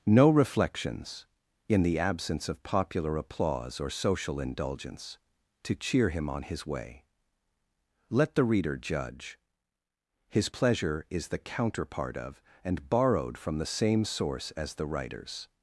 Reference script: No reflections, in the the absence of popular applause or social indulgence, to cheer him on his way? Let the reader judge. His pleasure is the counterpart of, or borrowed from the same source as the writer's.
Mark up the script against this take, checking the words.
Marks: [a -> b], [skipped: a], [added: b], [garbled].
No reflections, in the [skipped: the] absence of popular applause or social indulgence, to cheer him on his way? Let the reader judge. His pleasure is the counterpart of, [or -> and] borrowed from the same source as the writer's.